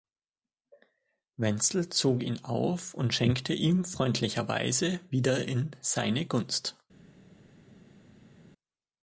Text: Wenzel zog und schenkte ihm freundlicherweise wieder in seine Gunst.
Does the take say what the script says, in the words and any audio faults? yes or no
no